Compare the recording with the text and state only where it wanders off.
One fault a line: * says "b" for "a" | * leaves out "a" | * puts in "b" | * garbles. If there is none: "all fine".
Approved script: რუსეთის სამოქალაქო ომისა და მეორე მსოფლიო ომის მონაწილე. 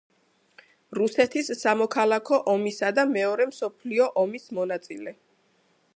all fine